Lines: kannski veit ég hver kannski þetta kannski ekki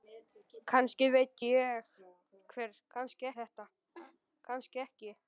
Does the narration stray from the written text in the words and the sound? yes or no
yes